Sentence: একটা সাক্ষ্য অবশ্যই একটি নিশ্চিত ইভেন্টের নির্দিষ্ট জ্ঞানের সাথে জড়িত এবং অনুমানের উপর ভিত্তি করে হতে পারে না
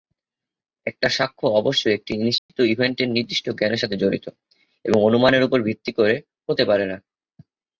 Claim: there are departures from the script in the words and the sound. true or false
true